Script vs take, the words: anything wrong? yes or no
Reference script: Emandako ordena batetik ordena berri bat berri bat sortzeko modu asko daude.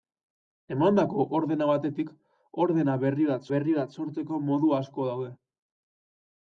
no